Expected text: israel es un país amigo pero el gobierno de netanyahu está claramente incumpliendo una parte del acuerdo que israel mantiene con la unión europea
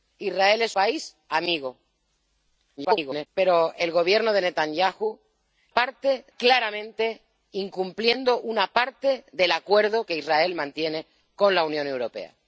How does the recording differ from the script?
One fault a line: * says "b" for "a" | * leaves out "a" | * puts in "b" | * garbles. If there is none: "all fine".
* leaves out "un"
* garbles
* says "parte" for "está"